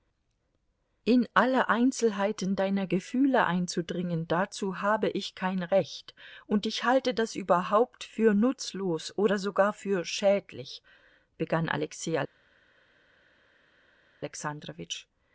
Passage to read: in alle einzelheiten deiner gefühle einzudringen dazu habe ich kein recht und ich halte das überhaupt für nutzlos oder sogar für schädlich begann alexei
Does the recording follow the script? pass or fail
pass